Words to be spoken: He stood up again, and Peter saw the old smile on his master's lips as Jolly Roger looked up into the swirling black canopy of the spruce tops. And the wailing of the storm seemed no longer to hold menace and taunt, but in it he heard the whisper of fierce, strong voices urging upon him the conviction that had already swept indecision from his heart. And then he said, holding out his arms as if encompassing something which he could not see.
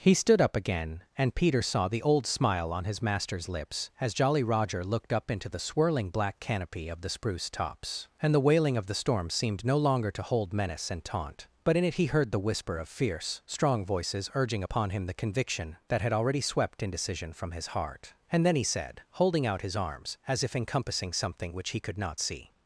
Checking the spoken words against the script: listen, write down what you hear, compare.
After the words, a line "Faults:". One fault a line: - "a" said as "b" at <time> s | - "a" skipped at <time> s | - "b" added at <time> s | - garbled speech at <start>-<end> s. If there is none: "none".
He stood up again, and Peter saw the old smile on his master's lips as Jolly Roger looked up into the swirling black canopy of the spruce tops. And the wailing of the storm seemed no longer to hold menace and taunt, but in it he heard the whisper of fierce, strong voices urging upon him the conviction that had already swept indecision from his heart. And then he said, holding out his arms as if encompassing something which he could not see.
Faults:
none